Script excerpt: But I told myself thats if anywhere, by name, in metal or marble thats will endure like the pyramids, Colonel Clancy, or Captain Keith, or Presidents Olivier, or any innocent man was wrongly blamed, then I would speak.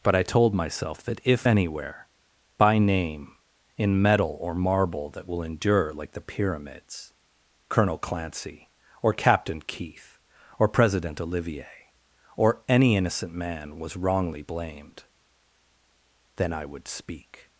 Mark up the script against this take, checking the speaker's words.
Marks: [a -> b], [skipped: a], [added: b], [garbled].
But I told myself [thats -> that] if anywhere, by name, in metal or marble [thats -> that] will endure like the pyramids, Colonel Clancy, or Captain Keith, or [Presidents -> President] Olivier, or any innocent man was wrongly blamed, then I would speak.